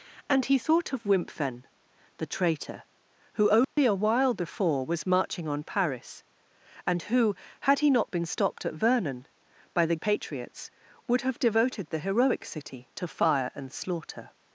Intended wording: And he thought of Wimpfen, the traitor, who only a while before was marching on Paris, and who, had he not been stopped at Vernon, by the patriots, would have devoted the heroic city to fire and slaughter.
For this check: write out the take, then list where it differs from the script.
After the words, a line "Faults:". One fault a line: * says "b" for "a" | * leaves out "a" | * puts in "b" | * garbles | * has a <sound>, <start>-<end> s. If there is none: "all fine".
And he thought of Wimpfen, the traitor, who only a while before was marching on Paris, and who, had he not been stopped at Vernon, by the patriots, would have devoted the heroic city to fire and slaughter.
Faults:
* has a dropout, 3.6-3.8 s